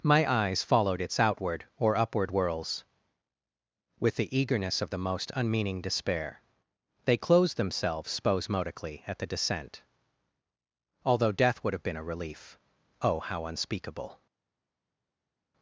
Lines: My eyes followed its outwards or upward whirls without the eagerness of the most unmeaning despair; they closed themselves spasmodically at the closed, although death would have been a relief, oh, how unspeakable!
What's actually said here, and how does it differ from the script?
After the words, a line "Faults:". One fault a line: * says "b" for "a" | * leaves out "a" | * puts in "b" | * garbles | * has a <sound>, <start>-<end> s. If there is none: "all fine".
My eyes followed its outward or upward whirls with the eagerness of the most unmeaning despair; they closed themselves spasmodically at the descent, although death would have been a relief, oh, how unspeakable!
Faults:
* says "outward" for "outwards"
* says "with" for "without"
* says "descent" for "closed"